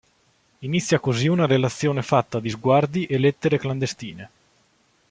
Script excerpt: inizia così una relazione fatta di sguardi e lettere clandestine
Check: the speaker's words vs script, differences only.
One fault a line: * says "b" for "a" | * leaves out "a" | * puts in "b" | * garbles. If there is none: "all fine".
all fine